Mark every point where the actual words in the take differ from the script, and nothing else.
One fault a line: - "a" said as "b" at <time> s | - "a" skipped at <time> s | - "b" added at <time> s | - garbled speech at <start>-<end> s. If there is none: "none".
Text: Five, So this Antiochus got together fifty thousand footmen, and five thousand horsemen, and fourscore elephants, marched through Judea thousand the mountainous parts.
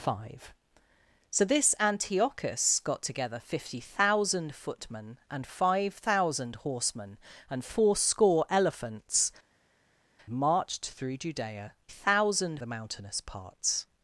none